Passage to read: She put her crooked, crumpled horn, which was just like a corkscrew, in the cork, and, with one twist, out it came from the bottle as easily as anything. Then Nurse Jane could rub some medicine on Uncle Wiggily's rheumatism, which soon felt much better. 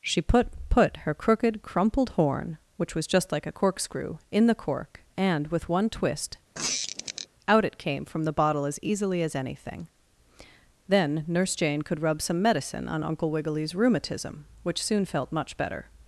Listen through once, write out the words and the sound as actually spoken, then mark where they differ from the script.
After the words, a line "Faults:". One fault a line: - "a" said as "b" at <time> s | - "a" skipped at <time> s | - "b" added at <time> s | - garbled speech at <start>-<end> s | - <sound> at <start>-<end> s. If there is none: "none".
She put put her crooked, crumpled horn, which was just like a corkscrew, in the cork, and, with one twist, out it came from the bottle as easily as anything. Then Nurse Jane could rub some medicine on Uncle Wiggily's rheumatism, which soon felt much better.
Faults:
- "put" added at 0.7 s
- squeak at 6.5-7.3 s